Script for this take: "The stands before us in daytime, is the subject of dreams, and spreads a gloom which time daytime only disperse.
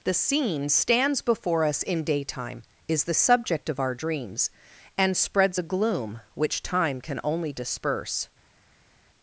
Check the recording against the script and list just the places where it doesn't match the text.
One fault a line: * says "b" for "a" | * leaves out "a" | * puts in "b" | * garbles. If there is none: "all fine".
* puts in "scene"
* puts in "our"
* says "can" for "daytime"